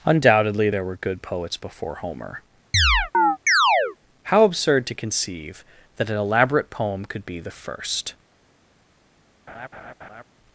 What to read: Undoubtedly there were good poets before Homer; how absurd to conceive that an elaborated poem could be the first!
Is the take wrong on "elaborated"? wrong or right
wrong